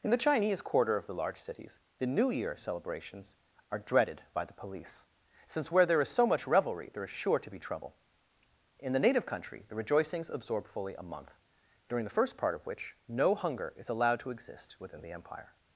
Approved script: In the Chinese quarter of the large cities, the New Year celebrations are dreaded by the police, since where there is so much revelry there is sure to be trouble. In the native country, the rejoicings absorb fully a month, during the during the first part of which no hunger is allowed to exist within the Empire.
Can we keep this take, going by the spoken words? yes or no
no